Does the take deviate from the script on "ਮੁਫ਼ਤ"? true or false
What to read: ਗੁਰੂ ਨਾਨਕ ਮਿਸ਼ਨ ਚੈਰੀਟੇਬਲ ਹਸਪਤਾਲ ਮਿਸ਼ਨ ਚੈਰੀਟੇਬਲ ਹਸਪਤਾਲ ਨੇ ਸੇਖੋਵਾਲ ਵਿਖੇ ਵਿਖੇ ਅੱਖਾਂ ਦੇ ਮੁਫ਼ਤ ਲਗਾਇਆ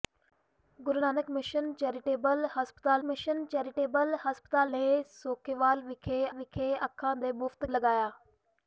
false